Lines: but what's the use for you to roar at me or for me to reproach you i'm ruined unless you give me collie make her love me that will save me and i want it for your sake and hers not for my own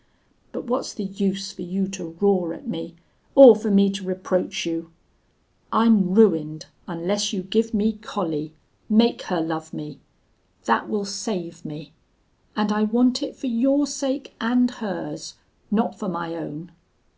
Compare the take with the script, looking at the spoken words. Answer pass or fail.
pass